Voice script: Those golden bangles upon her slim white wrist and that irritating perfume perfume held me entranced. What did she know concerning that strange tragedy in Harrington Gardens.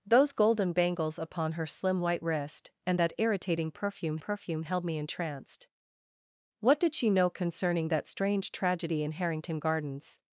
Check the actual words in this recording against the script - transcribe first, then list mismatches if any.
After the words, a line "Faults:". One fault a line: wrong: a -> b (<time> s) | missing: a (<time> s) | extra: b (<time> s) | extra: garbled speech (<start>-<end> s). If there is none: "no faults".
Those golden bangles upon her slim white wrist and that irritating perfume perfume held me entranced. What did she know concerning that strange tragedy in Harrington Gardens.
Faults:
no faults